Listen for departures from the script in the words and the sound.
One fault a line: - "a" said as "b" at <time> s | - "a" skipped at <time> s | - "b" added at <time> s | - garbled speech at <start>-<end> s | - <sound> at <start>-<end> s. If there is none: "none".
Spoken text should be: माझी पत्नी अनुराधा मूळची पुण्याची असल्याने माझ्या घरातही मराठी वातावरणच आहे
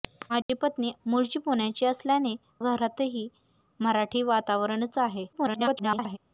- dropout at 0.4-0.5 s
- "अनुराधा" skipped at 0.9 s
- "माझ्या" skipped at 2.4 s
- garbled speech at 5.3-6.2 s